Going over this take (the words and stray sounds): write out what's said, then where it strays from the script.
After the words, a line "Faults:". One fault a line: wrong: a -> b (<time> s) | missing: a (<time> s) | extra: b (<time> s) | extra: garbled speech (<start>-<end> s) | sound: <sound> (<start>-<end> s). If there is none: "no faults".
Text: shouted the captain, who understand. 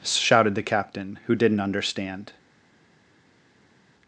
shouted the captain, who didn't understand.
Faults:
extra: didn't (1.4 s)